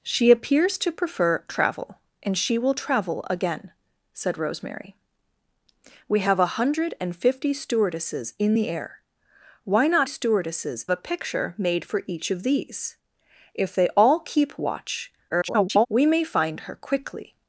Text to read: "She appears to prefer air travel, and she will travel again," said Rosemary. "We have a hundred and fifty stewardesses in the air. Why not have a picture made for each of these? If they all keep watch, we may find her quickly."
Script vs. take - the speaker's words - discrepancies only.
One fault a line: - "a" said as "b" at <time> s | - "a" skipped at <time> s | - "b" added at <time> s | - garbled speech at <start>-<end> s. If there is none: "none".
- "air" skipped at 1.4 s
- "have" said as "stewardesses" at 10.1 s
- garbled speech at 15.3-15.9 s